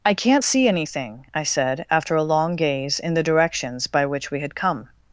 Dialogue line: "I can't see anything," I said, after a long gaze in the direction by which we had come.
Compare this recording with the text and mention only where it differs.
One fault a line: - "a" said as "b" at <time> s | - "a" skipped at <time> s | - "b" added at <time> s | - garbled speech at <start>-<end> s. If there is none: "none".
- "direction" said as "directions" at 3.2 s